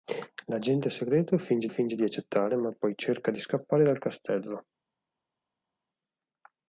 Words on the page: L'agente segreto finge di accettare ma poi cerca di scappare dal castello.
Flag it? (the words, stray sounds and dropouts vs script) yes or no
yes